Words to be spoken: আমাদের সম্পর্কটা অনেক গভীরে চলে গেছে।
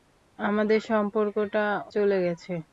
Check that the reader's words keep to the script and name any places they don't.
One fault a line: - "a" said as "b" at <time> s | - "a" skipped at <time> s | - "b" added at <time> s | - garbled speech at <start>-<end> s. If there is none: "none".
- "অনেক গভীরে" skipped at 1.6 s